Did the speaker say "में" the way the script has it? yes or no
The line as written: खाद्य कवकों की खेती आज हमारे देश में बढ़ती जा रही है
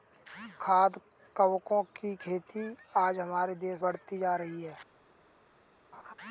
no